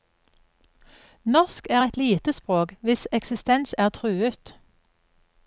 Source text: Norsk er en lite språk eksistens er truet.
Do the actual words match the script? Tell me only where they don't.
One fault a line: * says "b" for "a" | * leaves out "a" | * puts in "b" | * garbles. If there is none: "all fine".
* says "et" for "en"
* puts in "hvis"